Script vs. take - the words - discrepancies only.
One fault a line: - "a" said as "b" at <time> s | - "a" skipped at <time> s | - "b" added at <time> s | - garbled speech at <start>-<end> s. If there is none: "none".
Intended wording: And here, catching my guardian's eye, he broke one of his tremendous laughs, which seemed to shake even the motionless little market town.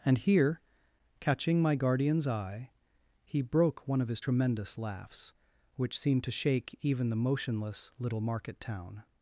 none